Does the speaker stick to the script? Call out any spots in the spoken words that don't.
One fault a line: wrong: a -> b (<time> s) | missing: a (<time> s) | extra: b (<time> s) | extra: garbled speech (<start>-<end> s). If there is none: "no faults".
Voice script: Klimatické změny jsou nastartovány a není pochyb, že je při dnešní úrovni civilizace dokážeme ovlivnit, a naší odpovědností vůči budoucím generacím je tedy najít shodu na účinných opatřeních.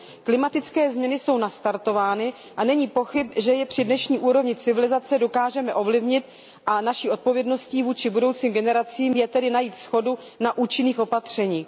no faults